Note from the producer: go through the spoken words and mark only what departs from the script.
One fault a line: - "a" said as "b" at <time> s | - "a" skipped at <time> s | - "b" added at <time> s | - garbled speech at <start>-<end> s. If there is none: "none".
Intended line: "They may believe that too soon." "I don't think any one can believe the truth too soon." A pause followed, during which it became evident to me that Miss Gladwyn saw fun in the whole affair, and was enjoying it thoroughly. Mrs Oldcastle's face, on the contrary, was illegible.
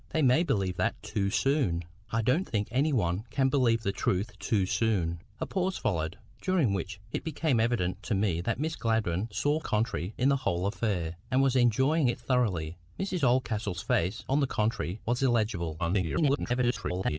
- "fun" said as "contrary" at 9.6 s
- garbled speech at 15.8-17.2 s